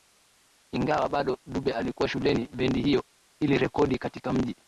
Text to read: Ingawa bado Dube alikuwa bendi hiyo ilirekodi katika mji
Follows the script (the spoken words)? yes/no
no